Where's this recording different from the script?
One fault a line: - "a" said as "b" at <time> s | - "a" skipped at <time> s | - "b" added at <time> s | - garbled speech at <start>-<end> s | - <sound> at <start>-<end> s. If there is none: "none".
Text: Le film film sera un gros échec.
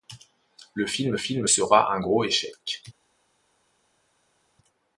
none